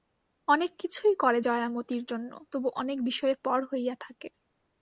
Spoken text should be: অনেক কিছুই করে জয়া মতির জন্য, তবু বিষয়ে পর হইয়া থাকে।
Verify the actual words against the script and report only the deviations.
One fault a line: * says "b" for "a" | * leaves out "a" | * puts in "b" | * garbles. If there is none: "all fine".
* puts in "অনেক"